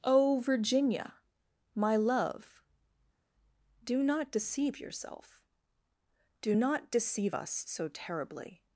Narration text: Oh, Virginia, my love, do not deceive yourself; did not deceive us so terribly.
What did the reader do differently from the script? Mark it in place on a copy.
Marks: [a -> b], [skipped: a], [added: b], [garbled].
Oh, Virginia, my love, do not deceive yourself; [did -> do] not deceive us so terribly.